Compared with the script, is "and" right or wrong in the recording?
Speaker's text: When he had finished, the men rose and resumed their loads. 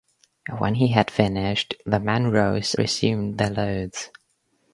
wrong